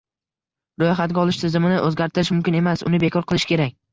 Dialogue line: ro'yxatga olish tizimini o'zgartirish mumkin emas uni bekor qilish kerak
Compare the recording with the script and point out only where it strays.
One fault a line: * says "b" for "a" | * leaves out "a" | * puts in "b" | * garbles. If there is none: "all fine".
all fine